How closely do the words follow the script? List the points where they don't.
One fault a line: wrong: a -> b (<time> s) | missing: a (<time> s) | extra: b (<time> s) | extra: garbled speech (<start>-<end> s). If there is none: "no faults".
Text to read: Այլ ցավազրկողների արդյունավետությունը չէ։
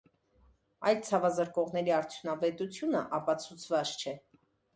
extra: ապացուցված (3.2 s)